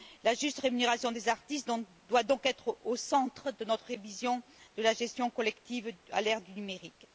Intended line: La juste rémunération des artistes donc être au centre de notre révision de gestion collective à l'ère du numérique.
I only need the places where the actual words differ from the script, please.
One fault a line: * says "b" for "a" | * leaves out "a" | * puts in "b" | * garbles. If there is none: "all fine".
* puts in "doit"
* puts in "la"